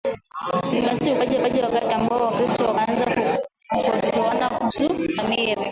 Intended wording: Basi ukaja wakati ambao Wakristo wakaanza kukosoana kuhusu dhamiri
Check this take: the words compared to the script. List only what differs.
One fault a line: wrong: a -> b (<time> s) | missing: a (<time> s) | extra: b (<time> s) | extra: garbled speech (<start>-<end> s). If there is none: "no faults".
extra: ukaja (1.3 s)